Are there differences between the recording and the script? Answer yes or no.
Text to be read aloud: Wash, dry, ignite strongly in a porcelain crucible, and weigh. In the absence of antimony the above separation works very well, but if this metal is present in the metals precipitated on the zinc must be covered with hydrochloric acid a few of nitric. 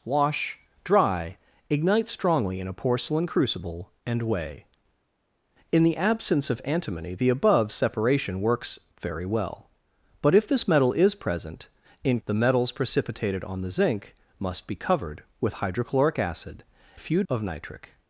no